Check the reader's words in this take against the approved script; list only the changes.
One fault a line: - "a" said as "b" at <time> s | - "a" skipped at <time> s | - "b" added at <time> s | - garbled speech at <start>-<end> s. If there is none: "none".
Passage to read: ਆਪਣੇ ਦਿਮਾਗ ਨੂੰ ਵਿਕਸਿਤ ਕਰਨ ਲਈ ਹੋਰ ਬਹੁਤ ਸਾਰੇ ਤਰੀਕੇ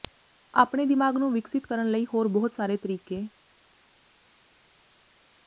none